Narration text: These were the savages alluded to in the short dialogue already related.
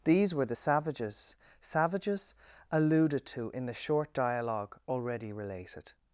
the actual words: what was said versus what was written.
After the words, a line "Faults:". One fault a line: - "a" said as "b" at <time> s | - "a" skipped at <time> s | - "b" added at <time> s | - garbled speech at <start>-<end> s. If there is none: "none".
These were the savages savages alluded to in the short dialogue already related.
Faults:
- "savages" added at 1.6 s